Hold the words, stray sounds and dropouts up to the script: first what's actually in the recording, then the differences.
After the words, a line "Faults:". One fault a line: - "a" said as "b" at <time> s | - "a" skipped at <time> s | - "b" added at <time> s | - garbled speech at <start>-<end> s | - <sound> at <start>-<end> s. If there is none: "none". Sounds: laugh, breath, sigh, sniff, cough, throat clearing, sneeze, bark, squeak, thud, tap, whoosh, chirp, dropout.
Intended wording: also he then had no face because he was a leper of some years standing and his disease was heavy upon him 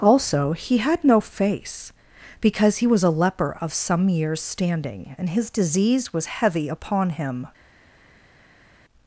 also he had no face because he was a leper of some years standing and his disease was heavy upon him
Faults:
- "then" skipped at 0.8 s